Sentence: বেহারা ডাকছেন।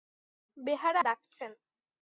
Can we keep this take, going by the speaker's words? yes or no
yes